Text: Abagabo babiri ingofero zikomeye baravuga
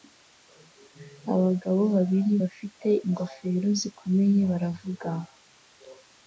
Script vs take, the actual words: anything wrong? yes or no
yes